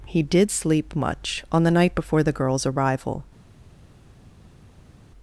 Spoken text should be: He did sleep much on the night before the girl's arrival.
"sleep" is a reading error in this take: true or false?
false